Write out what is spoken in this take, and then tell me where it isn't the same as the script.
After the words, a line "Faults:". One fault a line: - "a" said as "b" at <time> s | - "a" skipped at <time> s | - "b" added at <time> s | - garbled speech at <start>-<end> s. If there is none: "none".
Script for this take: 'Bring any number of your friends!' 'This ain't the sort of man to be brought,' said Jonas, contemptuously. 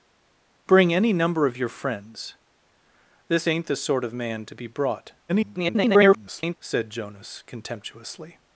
'Bring any number of your friends!' 'This ain't the sort of man to be brought,' [garbled] said Jonas, contemptuously.
Faults:
- garbled speech at 5.3-6.6 s